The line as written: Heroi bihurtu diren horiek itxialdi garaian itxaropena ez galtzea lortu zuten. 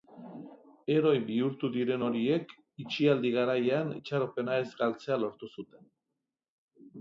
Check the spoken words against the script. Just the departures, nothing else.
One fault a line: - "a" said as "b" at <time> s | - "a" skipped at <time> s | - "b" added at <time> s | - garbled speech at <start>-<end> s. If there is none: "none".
none